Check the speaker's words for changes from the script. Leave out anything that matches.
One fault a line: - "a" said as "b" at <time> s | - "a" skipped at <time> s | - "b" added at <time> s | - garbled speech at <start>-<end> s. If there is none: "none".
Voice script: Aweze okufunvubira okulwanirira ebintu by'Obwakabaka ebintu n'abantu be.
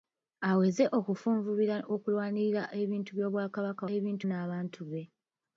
none